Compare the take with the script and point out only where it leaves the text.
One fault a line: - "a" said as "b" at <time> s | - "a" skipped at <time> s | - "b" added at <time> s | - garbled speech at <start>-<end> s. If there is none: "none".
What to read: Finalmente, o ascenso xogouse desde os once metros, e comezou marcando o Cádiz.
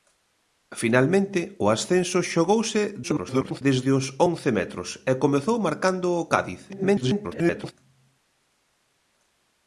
- garbled speech at 3.0-3.6 s
- garbled speech at 6.7-7.7 s